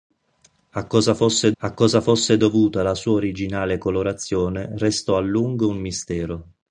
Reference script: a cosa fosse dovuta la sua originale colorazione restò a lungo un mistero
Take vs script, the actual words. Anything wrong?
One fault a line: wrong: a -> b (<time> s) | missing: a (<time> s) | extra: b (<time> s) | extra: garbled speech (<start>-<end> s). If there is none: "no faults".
extra: a cosa fosse (1.6 s)